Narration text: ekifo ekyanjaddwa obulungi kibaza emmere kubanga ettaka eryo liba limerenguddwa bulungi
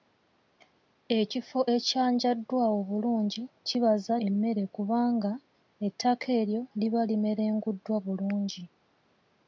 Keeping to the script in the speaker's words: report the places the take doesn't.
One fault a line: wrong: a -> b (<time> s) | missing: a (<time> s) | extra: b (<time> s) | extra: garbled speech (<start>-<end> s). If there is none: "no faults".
no faults